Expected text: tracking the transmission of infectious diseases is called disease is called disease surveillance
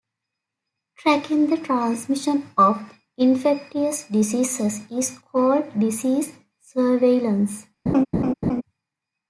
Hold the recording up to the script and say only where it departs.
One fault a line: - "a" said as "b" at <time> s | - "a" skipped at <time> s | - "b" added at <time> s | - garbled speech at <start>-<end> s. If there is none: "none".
- "is called disease" skipped at 6.4 s